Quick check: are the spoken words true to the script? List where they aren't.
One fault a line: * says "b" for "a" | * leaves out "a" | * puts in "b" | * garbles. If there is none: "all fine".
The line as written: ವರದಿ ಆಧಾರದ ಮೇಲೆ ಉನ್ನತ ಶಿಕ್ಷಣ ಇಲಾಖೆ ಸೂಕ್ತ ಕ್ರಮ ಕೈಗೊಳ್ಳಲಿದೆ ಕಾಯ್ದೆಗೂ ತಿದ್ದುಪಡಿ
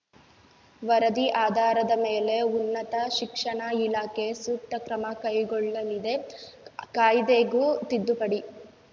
all fine